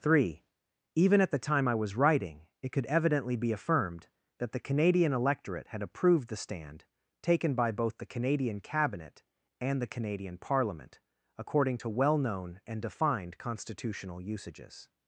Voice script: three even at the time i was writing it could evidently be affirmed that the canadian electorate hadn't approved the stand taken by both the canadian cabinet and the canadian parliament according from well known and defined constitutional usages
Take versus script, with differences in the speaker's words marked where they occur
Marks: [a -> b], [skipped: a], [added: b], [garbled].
three even at the time i was writing it could evidently be affirmed that the canadian electorate [hadn't -> had] approved the stand taken by both the canadian cabinet and the canadian parliament according [from -> to] well known and defined constitutional usages